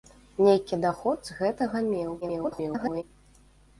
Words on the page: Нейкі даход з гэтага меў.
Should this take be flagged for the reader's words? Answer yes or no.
yes